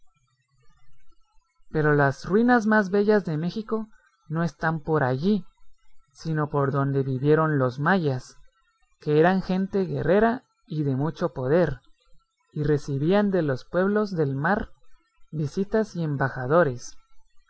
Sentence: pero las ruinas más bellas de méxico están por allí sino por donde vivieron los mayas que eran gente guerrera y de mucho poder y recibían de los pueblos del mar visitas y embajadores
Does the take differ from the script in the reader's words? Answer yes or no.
yes